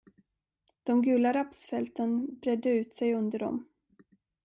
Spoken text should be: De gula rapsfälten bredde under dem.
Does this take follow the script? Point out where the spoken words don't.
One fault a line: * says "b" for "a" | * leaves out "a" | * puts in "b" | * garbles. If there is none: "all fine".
* puts in "ut sig"